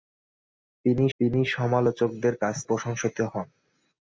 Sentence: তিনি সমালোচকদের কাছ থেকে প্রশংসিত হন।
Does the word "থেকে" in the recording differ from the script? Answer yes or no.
yes